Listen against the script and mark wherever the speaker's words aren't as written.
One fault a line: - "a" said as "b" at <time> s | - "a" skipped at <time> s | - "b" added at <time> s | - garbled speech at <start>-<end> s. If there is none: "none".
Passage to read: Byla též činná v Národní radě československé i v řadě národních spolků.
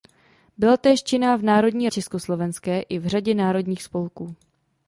- "radě" skipped at 1.9 s